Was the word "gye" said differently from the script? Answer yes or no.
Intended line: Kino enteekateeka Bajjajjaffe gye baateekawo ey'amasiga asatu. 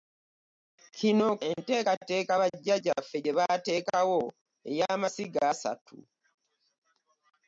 no